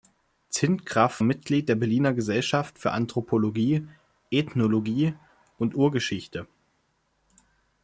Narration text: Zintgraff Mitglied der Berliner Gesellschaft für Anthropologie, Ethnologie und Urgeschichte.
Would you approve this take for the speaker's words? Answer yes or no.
yes